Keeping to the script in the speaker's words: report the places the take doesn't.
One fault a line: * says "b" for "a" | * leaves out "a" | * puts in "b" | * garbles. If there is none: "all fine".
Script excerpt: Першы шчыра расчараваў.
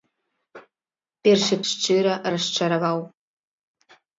all fine